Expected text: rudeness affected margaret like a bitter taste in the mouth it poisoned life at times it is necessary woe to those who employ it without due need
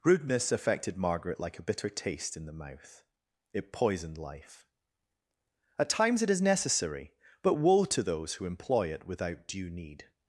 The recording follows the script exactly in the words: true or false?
false